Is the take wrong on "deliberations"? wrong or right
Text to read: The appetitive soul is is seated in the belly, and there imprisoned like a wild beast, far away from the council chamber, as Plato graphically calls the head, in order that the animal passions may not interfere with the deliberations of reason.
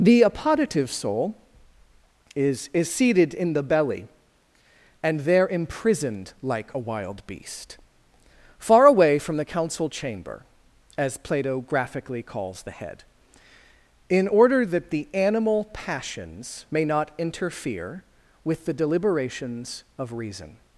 right